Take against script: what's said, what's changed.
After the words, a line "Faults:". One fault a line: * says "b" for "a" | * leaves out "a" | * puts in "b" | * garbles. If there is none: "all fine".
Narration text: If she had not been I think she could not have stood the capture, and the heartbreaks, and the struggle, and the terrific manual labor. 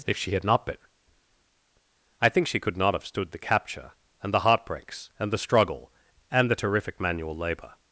If she had not been I think she could not have stood the capture, and the heartbreaks, and the struggle, and the terrific manual labor.
Faults:
all fine